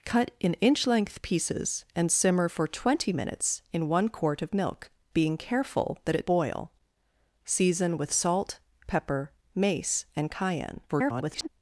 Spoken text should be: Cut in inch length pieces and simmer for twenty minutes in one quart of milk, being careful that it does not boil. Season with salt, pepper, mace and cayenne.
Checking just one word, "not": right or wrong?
wrong